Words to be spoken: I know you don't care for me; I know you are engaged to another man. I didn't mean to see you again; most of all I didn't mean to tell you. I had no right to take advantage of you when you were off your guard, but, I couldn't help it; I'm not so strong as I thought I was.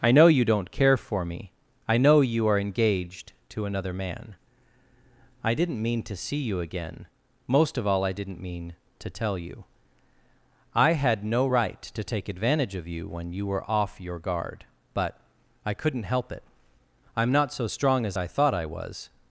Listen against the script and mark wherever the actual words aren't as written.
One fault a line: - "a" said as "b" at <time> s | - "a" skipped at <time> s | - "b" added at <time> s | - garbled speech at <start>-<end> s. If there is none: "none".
none